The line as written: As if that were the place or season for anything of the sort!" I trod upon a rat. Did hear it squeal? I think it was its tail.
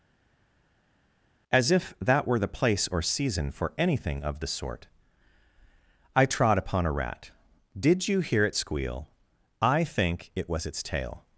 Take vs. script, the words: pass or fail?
fail